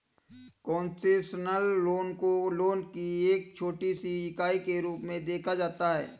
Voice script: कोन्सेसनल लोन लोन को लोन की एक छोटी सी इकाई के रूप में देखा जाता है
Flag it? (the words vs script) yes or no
yes